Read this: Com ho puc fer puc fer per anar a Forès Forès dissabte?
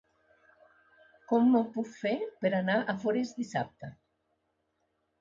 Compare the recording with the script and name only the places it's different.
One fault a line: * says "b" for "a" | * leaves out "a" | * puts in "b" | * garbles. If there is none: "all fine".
* leaves out "puc fer"
* leaves out "Forès"